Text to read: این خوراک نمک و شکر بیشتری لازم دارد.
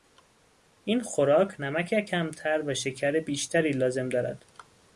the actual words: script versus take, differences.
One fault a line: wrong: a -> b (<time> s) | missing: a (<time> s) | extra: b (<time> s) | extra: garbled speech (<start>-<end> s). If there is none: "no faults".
extra: کمتر (2.0 s)